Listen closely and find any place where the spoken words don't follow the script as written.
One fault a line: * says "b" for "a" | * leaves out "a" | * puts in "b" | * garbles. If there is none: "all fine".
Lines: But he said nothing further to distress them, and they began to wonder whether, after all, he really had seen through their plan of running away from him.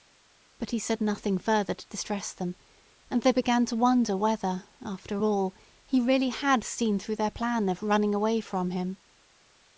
all fine